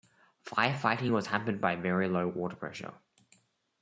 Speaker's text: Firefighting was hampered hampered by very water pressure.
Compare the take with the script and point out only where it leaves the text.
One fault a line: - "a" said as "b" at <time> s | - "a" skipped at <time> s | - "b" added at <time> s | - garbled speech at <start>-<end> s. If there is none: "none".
- "hampered" skipped at 1.6 s
- "low" added at 2.1 s